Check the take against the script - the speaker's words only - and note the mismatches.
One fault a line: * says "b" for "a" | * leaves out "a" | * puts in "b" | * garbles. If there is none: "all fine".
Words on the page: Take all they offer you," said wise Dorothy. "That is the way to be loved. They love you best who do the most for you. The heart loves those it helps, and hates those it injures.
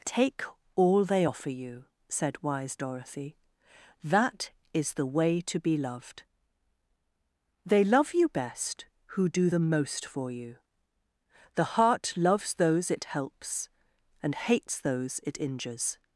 all fine